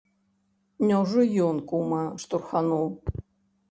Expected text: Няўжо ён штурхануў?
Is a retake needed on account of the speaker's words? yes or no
yes